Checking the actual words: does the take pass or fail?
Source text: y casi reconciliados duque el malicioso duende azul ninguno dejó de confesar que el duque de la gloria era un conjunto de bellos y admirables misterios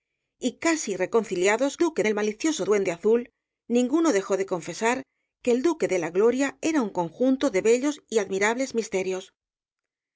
pass